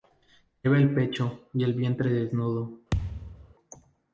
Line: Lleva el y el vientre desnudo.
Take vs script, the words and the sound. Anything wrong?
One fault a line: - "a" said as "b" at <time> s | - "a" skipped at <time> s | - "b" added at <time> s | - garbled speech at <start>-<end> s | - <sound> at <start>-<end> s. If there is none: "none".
- "pecho" added at 0.9 s
- thud at 2.9-3.5 s